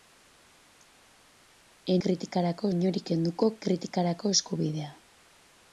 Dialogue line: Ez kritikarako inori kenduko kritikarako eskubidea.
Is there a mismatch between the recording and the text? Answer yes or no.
no